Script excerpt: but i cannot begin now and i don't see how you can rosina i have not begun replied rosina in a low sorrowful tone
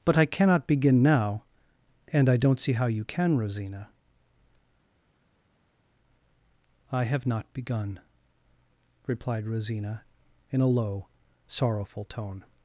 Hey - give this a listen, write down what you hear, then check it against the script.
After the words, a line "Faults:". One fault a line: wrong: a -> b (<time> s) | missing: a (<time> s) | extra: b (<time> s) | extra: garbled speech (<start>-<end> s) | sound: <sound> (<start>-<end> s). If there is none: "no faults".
but i cannot begin now and i don't see how you can rosina i have not begun replied rosina in a low sorrowful tone
Faults:
no faults